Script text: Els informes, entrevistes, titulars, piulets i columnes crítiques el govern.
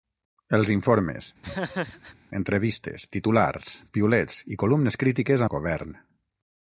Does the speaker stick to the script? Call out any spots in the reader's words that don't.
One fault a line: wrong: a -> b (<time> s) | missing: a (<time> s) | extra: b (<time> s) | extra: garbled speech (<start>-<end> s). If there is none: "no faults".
no faults